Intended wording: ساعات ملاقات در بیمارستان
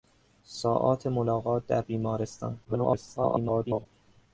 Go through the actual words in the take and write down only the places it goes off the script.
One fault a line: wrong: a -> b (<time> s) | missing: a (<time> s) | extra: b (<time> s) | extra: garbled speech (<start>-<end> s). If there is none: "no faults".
extra: garbled speech (2.6-3.9 s)